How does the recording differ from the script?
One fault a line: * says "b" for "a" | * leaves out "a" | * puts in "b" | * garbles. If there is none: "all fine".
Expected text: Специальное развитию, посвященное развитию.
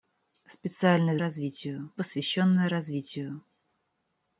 all fine